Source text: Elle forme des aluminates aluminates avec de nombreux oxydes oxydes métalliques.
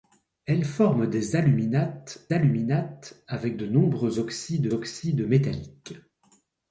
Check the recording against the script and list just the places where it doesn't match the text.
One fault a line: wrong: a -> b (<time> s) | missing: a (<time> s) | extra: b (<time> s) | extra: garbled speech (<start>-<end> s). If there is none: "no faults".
no faults